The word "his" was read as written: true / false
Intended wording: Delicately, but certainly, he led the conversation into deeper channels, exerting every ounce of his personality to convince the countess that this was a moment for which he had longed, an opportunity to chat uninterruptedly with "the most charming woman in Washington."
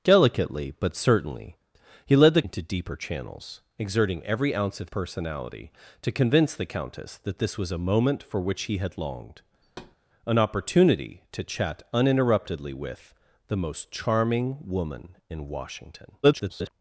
false